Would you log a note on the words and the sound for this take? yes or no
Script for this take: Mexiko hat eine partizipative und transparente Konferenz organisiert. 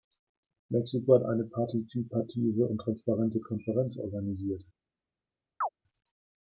yes